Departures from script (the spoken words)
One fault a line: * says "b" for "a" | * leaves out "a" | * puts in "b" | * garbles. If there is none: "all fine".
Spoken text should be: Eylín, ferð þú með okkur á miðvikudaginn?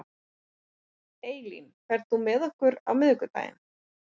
all fine